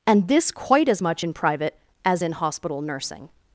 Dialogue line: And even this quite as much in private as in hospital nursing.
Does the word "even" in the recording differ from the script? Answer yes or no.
yes